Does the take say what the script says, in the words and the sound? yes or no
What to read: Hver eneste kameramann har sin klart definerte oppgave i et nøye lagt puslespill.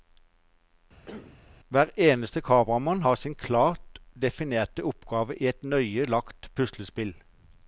no